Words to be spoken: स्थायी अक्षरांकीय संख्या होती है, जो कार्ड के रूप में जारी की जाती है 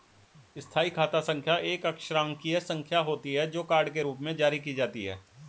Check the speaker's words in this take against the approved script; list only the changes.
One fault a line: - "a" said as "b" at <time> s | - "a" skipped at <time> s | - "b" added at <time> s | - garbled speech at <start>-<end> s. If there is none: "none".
- "खाता संख्या एक" added at 0.9 s